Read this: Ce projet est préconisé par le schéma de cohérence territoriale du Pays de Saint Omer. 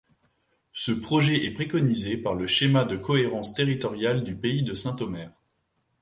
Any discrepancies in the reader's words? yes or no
no